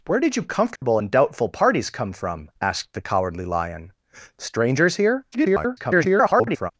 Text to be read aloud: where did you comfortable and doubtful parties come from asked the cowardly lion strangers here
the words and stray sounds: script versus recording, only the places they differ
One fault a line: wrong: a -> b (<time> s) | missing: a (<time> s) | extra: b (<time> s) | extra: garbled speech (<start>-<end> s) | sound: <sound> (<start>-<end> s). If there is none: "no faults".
sound: dropout (0.8-0.8 s)
extra: garbled speech (5.3-6.7 s)